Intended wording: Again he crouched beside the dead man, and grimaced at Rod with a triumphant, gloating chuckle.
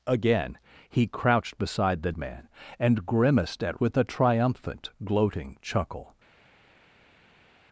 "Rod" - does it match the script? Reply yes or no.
no